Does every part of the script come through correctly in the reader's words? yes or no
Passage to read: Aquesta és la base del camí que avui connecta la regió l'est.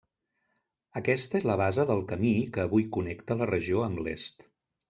no